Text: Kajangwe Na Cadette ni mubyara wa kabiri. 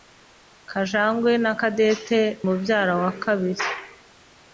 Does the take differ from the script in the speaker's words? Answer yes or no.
yes